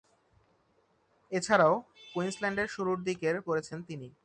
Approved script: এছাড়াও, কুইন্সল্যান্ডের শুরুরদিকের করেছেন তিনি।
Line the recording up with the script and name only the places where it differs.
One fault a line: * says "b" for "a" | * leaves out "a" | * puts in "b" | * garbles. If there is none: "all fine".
all fine